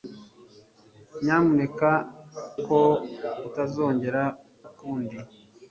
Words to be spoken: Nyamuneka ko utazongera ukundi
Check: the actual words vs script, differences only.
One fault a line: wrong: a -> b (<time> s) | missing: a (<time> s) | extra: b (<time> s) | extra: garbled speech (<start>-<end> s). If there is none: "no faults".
no faults